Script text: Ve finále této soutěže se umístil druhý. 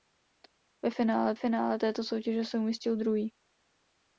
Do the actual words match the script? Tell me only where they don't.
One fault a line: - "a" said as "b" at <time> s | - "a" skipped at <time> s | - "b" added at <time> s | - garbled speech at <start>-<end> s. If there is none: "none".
- "finále" added at 1.3 s